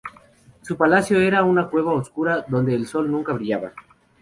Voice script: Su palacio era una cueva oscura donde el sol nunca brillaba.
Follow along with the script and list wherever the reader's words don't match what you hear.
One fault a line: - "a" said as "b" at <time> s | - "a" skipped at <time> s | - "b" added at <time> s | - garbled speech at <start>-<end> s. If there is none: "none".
none